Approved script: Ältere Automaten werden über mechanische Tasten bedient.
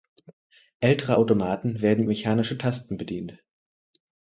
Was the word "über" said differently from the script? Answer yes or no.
yes